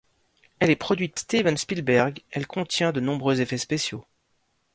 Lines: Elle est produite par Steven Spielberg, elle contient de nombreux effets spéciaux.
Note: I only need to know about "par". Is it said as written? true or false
false